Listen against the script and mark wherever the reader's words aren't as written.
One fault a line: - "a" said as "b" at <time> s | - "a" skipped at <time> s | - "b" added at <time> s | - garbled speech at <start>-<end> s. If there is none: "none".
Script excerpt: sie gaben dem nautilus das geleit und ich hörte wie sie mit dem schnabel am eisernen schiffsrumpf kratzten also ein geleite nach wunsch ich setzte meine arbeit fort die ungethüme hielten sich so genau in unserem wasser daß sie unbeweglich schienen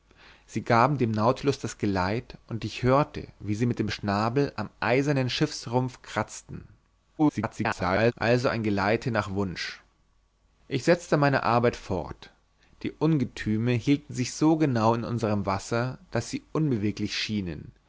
- garbled speech at 7.2-8.1 s